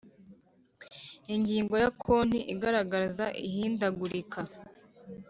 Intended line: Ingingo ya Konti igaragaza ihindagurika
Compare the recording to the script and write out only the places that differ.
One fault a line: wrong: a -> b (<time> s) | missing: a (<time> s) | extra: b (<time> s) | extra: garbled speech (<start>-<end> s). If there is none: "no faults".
no faults